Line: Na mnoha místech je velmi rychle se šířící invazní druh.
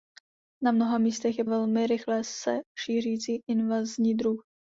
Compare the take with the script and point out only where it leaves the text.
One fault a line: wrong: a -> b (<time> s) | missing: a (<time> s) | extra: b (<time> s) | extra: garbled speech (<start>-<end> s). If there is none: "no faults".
no faults